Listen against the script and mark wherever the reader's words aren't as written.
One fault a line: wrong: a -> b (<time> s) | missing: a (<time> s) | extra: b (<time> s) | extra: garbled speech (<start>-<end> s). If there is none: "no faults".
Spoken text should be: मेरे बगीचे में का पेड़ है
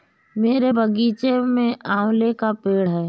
extra: आंवले (1.9 s)